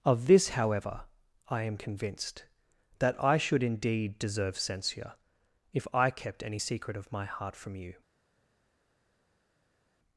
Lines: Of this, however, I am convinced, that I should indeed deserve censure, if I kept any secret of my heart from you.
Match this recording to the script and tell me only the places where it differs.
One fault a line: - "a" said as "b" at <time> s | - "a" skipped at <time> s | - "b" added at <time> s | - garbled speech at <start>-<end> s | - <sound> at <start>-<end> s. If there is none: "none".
none